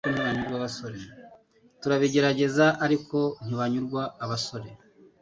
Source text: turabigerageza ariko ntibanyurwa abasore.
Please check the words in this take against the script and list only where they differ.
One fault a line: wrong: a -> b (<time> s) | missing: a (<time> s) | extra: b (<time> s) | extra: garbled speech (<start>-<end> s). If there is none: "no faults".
no faults